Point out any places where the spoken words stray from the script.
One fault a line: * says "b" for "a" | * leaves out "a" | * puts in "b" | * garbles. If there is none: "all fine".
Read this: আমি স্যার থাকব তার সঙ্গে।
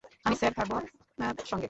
* leaves out "তার"